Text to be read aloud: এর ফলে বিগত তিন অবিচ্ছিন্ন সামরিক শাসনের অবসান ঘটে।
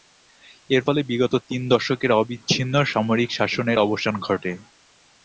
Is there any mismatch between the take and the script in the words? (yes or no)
yes